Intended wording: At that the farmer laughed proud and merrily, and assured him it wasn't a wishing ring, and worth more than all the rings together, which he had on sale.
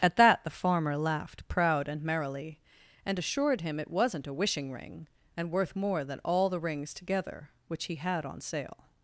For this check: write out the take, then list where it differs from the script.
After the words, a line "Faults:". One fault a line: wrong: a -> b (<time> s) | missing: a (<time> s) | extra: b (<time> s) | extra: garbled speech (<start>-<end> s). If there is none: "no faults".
At that the farmer laughed proud and merrily, and assured him it wasn't a wishing ring, and worth more than all the rings together, which he had on sale.
Faults:
no faults